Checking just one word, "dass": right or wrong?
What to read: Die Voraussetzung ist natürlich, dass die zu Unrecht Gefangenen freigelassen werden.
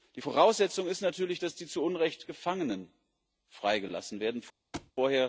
right